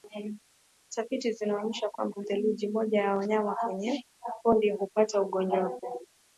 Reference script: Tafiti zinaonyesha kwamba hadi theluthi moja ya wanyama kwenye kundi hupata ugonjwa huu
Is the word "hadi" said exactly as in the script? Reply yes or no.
no